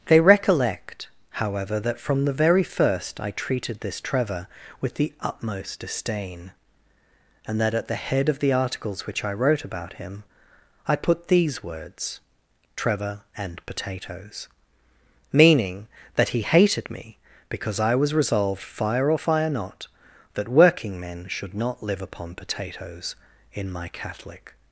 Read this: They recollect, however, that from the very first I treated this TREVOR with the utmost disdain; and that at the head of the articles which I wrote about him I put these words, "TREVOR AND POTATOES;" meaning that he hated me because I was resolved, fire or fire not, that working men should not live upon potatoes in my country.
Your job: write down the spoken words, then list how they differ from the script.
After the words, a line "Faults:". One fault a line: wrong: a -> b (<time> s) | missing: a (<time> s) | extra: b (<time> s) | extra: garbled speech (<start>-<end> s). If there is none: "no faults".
They recollect, however, that from the very first I treated this TREVOR with the utmost disdain; and that at the head of the articles which I wrote about him I put these words, "TREVOR AND POTATOES;" meaning that he hated me because I was resolved, fire or fire not, that working men should not live upon potatoes in my catholic.
Faults:
wrong: country -> catholic (23.9 s)